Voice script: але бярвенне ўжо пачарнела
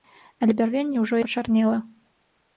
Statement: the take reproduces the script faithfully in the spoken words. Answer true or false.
true